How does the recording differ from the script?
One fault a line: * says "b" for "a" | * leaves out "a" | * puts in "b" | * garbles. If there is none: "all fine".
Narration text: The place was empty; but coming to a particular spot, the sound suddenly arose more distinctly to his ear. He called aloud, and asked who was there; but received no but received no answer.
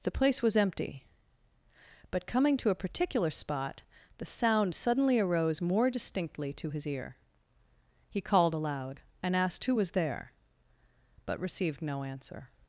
* leaves out "but received no"